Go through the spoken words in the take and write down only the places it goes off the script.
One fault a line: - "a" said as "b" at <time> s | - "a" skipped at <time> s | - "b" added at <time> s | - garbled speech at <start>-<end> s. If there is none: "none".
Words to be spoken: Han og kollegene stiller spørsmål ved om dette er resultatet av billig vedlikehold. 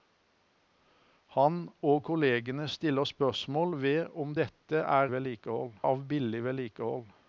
- "resultatet" said as "vedlikehold" at 5.1 s